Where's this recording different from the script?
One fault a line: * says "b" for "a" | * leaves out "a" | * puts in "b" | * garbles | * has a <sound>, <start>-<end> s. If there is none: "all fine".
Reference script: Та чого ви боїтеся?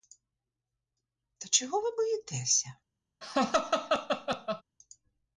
* has a laugh, 3.2-4.6 s